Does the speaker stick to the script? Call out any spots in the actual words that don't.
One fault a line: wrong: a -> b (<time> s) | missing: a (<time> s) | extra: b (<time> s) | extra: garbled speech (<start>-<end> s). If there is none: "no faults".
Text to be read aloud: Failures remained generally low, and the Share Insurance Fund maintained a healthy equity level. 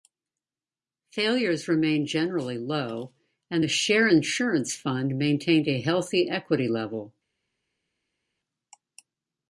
no faults